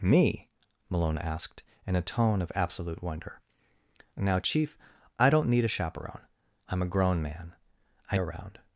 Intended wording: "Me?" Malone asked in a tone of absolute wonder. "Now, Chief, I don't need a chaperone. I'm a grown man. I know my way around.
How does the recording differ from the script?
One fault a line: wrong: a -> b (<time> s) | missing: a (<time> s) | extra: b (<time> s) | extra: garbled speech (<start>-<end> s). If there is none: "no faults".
missing: know my way (8.2 s)